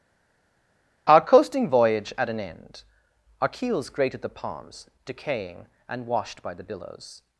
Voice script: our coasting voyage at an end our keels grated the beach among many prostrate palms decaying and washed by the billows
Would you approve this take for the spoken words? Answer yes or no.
no